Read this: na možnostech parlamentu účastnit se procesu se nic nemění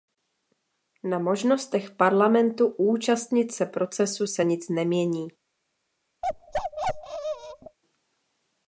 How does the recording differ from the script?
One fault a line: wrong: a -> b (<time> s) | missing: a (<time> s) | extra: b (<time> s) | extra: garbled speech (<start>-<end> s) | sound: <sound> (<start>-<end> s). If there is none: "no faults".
sound: bark (6.2-7.8 s)